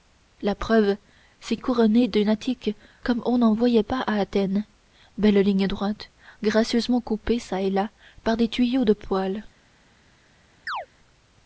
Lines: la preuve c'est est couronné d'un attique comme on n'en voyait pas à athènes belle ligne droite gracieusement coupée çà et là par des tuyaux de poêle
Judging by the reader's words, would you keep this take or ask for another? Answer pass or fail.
pass